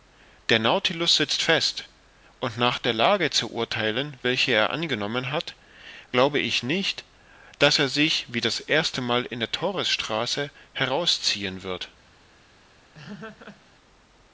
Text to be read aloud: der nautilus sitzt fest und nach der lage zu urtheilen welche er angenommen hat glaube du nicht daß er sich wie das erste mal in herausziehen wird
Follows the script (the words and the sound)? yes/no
no